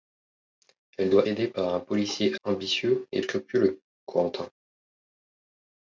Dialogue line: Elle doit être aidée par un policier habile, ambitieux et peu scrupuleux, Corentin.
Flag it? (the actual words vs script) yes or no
yes